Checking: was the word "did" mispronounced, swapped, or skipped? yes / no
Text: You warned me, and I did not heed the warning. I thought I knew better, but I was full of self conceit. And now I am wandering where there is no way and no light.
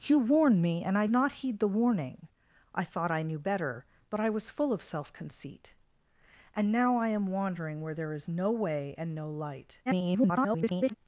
yes